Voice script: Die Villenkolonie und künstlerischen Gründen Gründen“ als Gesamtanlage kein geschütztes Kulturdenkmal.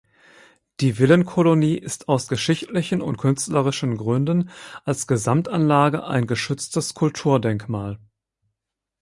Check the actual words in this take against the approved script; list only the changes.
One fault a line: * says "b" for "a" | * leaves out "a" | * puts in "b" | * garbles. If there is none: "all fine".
* puts in "ist aus geschichtlichen"
* leaves out "Gründen"
* says "ein" for "kein"